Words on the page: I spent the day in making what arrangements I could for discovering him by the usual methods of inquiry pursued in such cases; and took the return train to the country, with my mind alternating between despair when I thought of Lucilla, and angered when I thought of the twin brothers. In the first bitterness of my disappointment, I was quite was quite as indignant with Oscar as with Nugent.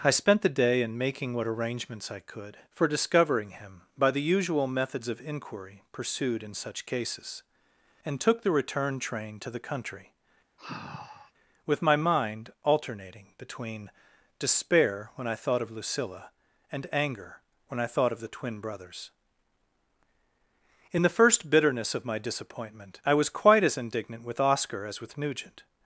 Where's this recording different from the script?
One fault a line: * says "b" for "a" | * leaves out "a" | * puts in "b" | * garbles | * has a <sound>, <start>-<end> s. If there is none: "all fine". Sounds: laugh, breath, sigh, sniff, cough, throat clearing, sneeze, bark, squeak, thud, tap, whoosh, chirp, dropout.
* has a sigh, 10.6-11.3 s
* says "anger" for "angered"
* leaves out "was quite"